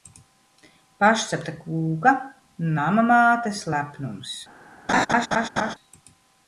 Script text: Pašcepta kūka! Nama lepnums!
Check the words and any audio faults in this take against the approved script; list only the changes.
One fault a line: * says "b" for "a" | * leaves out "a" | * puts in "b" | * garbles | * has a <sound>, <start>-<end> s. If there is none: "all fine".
* puts in "mātes"
* has a laugh, 4.9-5.7 s